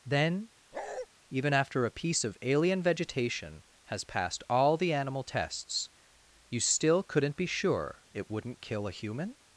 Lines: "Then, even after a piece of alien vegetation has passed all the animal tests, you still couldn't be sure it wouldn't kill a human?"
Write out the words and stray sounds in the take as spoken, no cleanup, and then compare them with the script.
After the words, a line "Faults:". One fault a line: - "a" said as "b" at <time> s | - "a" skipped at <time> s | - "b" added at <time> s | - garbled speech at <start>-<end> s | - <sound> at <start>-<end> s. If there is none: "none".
"Then, even after a piece of alien vegetation has passed all the animal tests, you still couldn't be sure it wouldn't kill a human?"
Faults:
- bark at 0.7-1.1 s